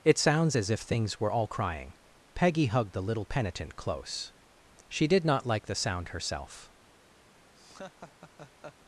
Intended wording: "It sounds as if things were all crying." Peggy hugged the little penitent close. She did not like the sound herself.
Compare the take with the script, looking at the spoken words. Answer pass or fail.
pass